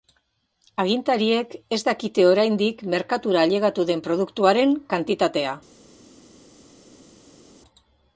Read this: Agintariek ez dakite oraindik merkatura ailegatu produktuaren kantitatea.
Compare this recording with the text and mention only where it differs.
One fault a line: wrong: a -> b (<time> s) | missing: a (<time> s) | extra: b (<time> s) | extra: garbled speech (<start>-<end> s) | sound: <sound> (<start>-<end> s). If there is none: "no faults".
extra: den (3.9 s)